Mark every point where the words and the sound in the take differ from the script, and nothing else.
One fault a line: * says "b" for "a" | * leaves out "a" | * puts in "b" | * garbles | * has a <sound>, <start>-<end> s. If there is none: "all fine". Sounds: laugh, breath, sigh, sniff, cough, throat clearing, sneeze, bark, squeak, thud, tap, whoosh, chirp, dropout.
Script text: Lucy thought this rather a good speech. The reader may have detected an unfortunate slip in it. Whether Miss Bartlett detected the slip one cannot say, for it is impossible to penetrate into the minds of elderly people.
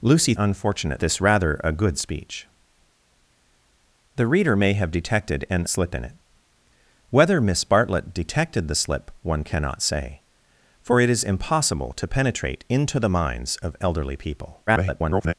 * says "unfortunate" for "thought"
* leaves out "unfortunate"
* garbles